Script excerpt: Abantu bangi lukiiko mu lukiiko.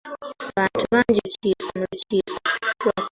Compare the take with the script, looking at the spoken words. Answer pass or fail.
pass